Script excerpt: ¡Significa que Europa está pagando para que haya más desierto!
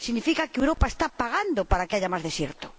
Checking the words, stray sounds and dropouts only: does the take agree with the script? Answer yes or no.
no